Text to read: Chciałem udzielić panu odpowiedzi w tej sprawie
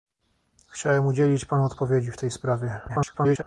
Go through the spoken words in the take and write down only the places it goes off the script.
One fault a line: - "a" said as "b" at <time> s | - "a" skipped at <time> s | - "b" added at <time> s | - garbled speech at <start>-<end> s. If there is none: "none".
- garbled speech at 2.9-3.4 s